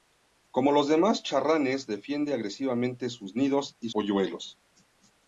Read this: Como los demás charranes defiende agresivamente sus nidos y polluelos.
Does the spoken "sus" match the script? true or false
true